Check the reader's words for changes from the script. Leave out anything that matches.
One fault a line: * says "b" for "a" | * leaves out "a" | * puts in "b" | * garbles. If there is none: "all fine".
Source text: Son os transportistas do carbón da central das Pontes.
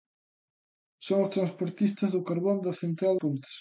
* leaves out "das"